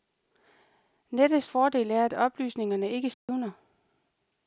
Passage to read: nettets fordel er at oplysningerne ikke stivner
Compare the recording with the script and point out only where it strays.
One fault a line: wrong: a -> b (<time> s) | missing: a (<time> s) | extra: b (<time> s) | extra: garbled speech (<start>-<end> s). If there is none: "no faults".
no faults